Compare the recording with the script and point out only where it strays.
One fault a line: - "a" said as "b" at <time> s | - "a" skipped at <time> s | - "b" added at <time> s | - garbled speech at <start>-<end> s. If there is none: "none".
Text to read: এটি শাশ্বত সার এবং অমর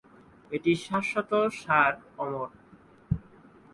- "এবং" skipped at 1.9 s